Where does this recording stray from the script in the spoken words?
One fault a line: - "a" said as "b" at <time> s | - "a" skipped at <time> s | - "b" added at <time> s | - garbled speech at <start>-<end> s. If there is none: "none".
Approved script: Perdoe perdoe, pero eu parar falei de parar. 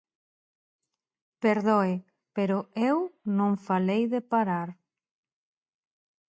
- "perdoe" skipped at 1.9 s
- "parar" said as "non" at 3.4 s